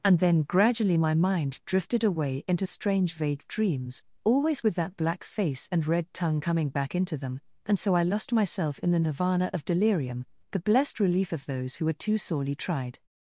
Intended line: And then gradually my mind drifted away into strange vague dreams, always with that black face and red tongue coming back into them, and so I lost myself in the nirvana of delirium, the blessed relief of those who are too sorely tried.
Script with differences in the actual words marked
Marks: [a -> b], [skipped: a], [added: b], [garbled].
And then gradually my mind drifted away into strange vague dreams, always with that black face and red tongue coming back into them, and so I lost myself in the nirvana of delirium, the blessed relief of those who [are -> were] too sorely tried.